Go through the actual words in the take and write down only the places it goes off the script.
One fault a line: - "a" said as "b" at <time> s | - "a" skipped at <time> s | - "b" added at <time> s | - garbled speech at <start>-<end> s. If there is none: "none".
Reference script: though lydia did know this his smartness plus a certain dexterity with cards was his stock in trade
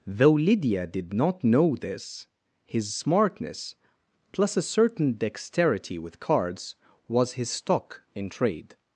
- "not" added at 1.1 s